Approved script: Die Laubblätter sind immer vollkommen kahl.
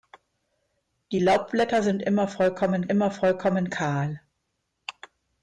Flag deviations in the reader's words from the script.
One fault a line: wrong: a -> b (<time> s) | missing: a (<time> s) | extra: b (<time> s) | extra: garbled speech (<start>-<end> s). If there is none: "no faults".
extra: immer vollkommen (2.8 s)